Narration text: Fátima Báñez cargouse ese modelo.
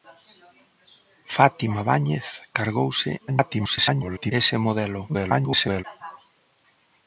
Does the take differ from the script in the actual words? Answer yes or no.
yes